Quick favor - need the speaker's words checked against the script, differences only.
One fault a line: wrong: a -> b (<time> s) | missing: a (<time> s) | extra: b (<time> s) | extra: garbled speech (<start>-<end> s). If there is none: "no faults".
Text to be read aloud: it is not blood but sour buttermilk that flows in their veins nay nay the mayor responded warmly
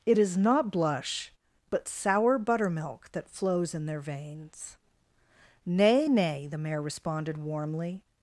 wrong: blood -> blush (0.7 s)